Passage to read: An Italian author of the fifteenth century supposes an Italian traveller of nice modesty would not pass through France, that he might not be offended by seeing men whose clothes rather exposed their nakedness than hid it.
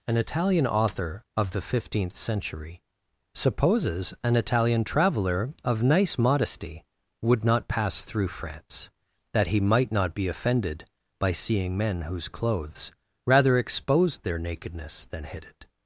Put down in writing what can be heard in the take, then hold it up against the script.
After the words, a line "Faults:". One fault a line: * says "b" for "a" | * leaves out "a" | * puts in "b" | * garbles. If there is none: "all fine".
An Italian author of the fifteenth century supposes an Italian traveller of nice modesty would not pass through France, that he might not be offended by seeing men whose clothes rather exposed their nakedness than hid it.
Faults:
all fine